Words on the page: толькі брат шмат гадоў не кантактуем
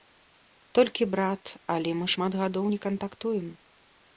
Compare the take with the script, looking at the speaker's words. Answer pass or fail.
fail